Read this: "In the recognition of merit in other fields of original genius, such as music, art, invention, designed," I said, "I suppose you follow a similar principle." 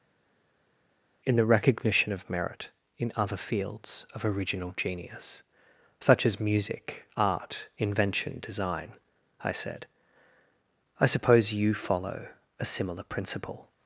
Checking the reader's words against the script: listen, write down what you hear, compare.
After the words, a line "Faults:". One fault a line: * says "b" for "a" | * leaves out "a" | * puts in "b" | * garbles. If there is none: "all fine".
"In the recognition of merit in other fields of original genius, such as music, art, invention, design," I said, "I suppose you follow a similar principle."
Faults:
* says "design" for "designed"